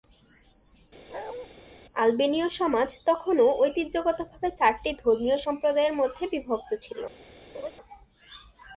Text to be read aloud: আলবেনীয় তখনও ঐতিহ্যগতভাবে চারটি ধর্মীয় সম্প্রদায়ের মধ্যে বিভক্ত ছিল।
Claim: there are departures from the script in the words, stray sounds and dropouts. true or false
true